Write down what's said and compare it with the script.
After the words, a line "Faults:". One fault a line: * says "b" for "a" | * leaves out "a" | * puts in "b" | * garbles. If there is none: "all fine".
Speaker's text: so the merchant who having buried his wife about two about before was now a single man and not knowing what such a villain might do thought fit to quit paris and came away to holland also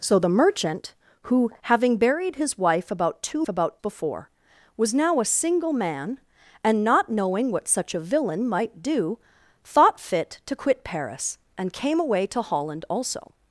so the merchant who having buried his wife about two about before was now a single man and not knowing what such a villain might do thought fit to quit paris and came away to holland also
Faults:
all fine